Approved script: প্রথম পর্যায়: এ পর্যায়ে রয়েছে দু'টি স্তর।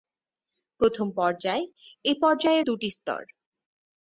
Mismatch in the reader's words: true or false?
true